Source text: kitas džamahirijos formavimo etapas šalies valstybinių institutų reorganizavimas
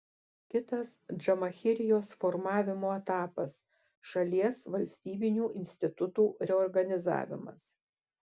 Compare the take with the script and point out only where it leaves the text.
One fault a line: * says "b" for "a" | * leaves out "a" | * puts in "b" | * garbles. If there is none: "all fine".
all fine